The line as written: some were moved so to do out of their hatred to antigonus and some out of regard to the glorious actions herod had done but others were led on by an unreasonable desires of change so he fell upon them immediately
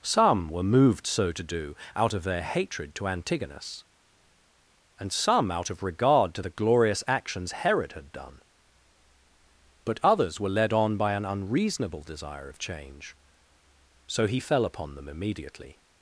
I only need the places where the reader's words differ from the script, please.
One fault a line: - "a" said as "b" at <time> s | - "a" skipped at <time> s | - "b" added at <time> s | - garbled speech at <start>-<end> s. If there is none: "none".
- "desires" said as "desire" at 12.0 s